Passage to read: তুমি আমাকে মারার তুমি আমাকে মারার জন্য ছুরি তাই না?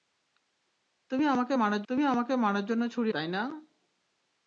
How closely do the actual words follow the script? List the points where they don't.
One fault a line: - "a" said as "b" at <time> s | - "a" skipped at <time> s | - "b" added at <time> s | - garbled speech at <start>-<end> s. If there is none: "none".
none